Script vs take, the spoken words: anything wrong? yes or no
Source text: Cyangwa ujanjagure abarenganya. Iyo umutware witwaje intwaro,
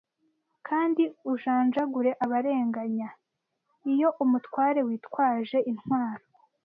yes